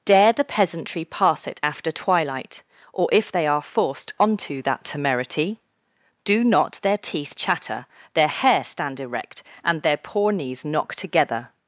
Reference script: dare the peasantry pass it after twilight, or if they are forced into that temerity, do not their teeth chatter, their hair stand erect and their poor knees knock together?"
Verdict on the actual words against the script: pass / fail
fail